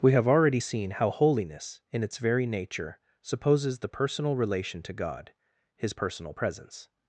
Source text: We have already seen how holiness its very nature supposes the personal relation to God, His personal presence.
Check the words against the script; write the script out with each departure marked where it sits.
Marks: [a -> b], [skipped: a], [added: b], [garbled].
We have already seen how holiness [added: in] its very nature supposes the personal relation to God, His personal presence.